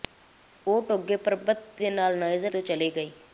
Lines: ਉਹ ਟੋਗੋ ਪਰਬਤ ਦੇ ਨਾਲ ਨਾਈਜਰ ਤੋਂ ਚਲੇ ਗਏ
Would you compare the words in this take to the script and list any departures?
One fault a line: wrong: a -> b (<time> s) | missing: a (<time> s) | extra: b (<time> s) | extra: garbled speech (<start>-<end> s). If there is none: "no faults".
no faults